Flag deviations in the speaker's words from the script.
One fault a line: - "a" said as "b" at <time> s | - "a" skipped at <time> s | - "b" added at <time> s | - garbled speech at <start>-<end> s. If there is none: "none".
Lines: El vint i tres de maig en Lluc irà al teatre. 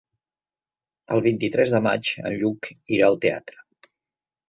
none